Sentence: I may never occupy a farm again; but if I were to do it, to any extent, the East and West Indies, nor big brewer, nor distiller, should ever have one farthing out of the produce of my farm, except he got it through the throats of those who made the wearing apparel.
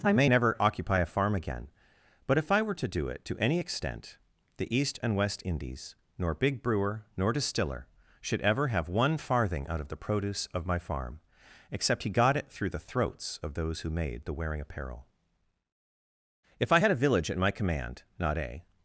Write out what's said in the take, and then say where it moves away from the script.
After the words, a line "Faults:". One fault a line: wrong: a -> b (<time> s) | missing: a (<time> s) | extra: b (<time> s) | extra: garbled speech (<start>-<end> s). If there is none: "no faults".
I may never occupy a farm again; but if I were to do it, to any extent, the East and West Indies, nor big brewer, nor distiller, should ever have one farthing out of the produce of my farm, except he got it through the throats of those who made the wearing apparel. If I had a village at my command, not a
Faults:
extra: If I had a village at my command not a (16.6 s)